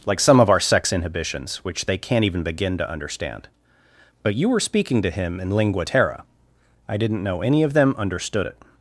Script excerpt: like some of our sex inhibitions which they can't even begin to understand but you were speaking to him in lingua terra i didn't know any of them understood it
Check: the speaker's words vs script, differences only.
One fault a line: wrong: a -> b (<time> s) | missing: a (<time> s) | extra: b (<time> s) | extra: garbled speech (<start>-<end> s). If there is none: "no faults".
no faults